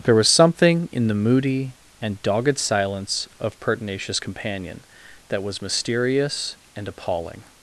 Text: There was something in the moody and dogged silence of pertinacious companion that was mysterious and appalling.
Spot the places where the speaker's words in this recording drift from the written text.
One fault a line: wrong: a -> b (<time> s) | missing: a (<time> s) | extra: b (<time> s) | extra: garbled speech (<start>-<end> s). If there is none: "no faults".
no faults